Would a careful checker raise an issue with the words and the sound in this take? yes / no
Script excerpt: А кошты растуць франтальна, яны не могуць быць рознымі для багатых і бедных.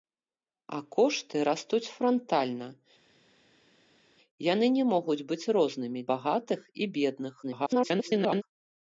yes